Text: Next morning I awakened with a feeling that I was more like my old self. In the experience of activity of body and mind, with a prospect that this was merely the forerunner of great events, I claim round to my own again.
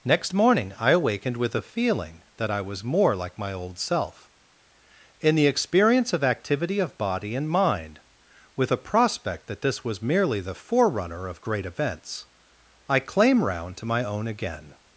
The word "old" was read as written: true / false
true